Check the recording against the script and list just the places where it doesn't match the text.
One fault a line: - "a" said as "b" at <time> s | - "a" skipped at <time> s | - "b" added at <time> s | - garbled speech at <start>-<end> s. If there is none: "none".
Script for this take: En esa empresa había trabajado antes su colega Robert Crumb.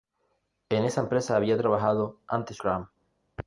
- "su colega Robert" skipped at 2.6 s